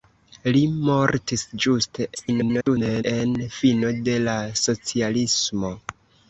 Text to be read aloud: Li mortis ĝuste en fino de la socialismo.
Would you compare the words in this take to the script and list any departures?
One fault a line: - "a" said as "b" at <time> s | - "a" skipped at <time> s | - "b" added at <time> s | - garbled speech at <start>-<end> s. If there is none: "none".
- garbled speech at 2.1-3.0 s